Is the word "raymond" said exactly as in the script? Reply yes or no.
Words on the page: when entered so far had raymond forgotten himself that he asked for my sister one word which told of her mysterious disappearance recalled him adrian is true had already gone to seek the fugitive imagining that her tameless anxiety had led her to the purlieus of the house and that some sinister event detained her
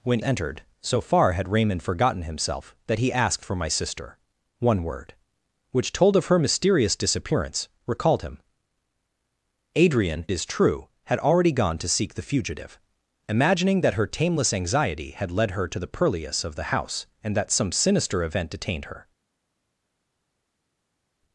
yes